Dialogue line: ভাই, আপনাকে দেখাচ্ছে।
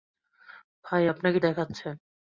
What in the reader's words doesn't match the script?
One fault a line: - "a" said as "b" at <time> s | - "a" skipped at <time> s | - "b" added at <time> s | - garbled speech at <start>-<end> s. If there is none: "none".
none